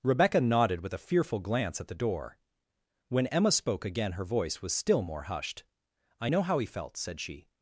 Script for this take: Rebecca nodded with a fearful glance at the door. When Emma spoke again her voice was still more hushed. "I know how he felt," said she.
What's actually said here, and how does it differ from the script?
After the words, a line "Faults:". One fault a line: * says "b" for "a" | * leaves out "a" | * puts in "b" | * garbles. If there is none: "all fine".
Rebecca nodded with a fearful glance at the door. When Emma spoke again her voice was still more hushed. "I know how he felt," said she.
Faults:
all fine